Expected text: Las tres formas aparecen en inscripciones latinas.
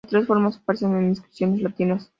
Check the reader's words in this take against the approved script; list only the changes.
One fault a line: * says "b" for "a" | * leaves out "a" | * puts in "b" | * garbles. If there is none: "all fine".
all fine